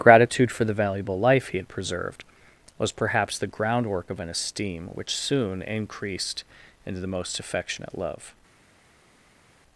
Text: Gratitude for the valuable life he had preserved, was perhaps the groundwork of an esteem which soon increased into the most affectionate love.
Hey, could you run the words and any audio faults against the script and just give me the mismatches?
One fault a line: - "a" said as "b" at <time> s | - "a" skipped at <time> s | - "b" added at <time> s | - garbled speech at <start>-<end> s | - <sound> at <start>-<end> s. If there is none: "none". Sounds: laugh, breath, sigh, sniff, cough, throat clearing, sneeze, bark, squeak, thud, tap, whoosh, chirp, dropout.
none